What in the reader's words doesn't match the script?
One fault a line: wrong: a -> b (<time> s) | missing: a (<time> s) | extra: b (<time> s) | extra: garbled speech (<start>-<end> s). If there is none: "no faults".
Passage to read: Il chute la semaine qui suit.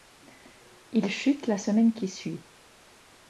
no faults